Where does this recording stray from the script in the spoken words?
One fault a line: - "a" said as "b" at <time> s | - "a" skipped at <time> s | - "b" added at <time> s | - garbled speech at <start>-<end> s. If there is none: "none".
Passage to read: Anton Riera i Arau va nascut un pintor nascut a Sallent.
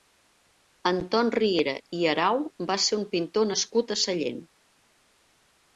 - "nascut" said as "ser" at 2.9 s